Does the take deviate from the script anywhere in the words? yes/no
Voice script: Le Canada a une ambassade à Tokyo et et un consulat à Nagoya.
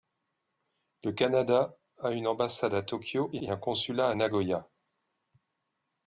no